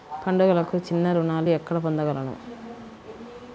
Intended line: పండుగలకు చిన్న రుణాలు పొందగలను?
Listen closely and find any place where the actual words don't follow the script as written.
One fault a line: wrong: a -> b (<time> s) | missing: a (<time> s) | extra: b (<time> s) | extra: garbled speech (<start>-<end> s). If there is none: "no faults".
extra: ఎక్కడ (1.5 s)